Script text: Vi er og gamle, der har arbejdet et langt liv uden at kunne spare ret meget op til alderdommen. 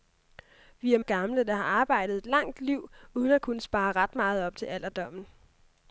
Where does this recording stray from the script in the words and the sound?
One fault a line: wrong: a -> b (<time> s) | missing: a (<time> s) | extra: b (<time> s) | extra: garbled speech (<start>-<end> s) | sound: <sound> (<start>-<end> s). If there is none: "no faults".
no faults